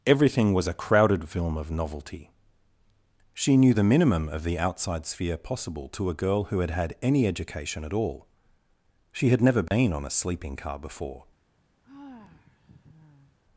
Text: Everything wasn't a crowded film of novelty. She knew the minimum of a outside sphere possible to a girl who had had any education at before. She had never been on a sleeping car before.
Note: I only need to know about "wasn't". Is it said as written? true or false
false